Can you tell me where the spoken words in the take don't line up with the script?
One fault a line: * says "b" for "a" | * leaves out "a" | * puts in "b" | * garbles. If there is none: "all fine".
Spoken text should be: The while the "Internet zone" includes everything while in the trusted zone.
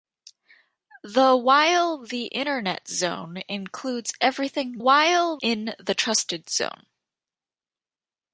all fine